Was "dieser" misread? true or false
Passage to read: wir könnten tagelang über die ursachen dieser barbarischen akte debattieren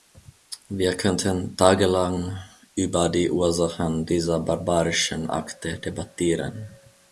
false